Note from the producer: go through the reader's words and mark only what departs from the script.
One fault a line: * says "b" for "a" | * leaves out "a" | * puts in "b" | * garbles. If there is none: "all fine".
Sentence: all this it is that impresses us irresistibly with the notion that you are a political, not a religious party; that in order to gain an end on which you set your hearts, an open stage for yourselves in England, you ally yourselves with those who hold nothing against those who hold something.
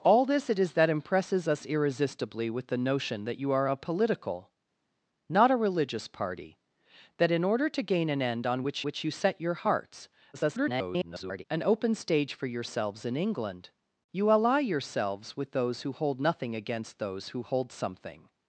* puts in "which"
* garbles